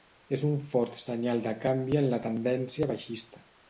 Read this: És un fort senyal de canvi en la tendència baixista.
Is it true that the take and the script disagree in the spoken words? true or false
false